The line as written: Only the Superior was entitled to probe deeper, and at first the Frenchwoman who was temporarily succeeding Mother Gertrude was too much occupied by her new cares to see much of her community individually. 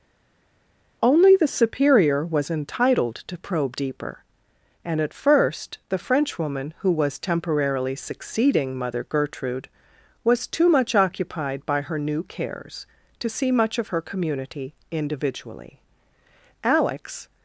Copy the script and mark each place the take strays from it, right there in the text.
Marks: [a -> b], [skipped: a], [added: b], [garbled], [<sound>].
Only the Superior was entitled to probe deeper, and at first the Frenchwoman who was temporarily succeeding Mother Gertrude was too much occupied by her new cares to see much of her community individually. [added: Alex]